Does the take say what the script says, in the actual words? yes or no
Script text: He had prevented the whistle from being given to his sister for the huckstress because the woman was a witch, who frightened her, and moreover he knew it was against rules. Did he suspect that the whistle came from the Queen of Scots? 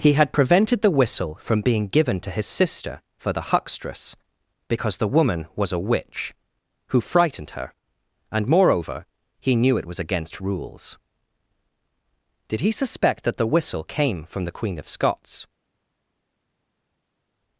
yes